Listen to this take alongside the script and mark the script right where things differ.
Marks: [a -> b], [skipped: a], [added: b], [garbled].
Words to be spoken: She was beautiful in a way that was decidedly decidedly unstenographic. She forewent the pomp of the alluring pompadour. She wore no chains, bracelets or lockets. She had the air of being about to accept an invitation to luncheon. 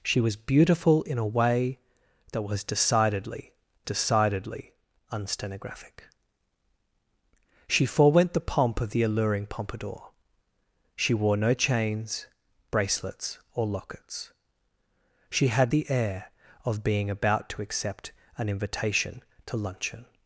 She was beautiful in a way that was decidedly decidedly unstenographic. She forewent the pomp of the alluring pompadour. She wore no chains, bracelets or lockets. She had the air of being about to accept an invitation to luncheon.